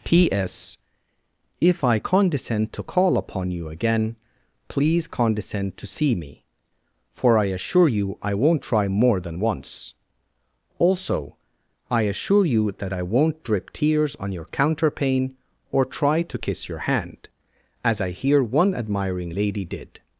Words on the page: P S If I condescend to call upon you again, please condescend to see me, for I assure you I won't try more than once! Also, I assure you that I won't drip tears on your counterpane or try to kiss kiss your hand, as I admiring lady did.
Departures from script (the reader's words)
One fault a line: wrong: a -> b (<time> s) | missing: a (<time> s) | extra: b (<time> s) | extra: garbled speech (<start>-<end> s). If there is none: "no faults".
missing: kiss (16.7 s)
extra: hear one (18.1 s)